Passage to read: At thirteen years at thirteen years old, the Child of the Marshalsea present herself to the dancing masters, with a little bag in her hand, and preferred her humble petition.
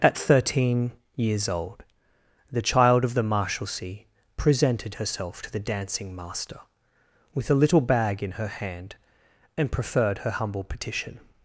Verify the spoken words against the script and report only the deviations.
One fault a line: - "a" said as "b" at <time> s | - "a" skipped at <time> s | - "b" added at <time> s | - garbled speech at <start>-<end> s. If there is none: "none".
- "at thirteen years" skipped at 1.5 s
- "present" said as "presented" at 4.3 s
- "masters" said as "master" at 6.1 s